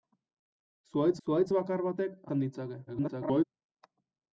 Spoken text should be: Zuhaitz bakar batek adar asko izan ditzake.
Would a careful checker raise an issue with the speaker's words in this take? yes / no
yes